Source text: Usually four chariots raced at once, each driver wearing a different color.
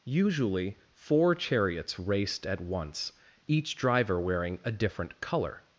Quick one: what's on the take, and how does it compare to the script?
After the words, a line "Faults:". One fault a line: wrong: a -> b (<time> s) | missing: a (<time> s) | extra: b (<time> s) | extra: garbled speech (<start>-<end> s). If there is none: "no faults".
Usually four chariots raced at once, each driver wearing a different color.
Faults:
no faults